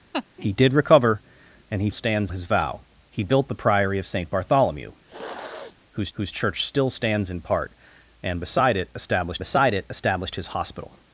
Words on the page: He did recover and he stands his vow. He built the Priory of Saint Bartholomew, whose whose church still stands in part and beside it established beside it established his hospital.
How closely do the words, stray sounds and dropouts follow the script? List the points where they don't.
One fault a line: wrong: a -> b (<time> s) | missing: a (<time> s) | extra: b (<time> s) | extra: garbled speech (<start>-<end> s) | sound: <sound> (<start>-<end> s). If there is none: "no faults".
sound: laugh (0.1-0.3 s)
sound: sniff (5.1-5.8 s)